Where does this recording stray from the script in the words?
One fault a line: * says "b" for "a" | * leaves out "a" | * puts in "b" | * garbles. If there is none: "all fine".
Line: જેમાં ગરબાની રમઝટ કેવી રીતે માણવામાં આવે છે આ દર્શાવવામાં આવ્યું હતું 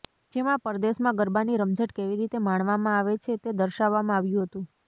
* puts in "પરદેશમાં"
* says "તે" for "આ"